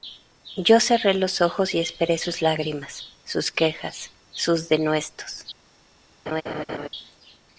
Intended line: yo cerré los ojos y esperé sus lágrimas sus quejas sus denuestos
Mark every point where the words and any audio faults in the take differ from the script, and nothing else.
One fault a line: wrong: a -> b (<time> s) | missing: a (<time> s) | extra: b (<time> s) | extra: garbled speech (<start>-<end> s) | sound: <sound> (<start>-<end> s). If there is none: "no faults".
sound: laugh (6.3-6.9 s)